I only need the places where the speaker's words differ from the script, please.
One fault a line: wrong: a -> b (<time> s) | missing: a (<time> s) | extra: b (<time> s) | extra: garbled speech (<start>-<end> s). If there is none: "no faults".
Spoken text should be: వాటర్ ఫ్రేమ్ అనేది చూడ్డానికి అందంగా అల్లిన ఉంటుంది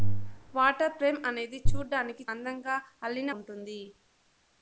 no faults